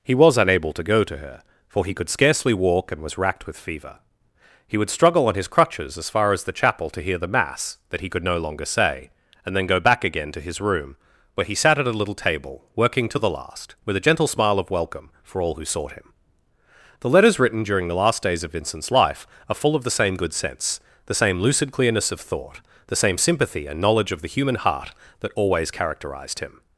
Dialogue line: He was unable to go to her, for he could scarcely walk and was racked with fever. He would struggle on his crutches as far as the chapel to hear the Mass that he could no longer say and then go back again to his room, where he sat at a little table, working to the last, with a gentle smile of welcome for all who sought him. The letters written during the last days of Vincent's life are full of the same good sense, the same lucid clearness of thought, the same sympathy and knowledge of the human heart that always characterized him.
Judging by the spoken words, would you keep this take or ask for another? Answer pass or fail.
pass